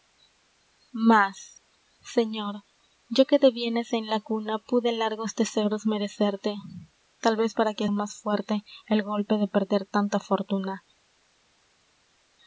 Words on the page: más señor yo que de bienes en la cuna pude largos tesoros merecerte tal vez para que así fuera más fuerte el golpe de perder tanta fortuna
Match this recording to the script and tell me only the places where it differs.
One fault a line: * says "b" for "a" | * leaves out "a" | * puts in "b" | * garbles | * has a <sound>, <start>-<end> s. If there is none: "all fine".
* leaves out "así fuera"